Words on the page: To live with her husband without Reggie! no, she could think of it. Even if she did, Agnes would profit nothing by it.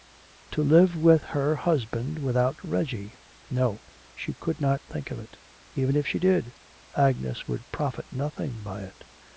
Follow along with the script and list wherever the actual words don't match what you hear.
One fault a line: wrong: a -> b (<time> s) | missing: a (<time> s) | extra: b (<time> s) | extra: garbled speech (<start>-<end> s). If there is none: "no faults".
extra: not (4.6 s)